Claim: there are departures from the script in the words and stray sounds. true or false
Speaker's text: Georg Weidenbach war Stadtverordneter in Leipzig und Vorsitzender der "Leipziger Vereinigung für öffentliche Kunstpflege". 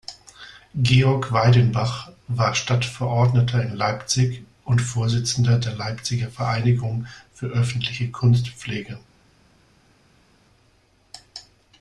false